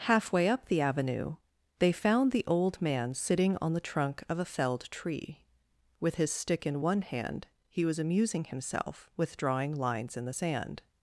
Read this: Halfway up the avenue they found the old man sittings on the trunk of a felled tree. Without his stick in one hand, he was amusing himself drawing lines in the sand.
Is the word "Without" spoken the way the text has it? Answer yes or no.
no